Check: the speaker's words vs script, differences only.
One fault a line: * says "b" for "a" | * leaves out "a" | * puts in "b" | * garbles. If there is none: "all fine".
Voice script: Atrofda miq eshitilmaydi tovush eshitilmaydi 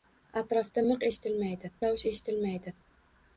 all fine